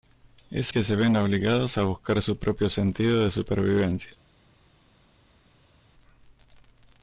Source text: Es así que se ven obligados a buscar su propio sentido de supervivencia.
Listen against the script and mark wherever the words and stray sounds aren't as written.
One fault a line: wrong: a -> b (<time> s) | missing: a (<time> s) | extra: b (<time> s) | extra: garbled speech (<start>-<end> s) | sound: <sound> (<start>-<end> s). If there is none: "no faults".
missing: así (0.7 s)